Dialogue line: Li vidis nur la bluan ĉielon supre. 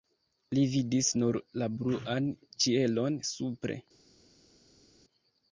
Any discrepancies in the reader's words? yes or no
no